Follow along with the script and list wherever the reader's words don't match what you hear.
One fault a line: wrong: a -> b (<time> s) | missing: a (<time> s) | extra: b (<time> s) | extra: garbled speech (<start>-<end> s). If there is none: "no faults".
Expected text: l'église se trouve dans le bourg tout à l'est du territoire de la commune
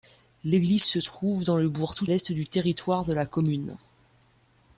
missing: à (2.1 s)